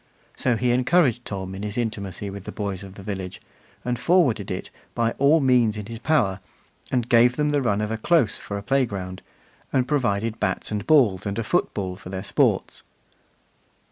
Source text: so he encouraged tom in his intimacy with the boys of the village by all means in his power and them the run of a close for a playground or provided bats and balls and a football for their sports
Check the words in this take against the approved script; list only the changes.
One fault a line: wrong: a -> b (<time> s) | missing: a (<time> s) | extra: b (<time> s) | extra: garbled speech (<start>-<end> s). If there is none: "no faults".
extra: and forwarded it (3.9 s)
extra: gave (7.1 s)
wrong: or -> and (9.7 s)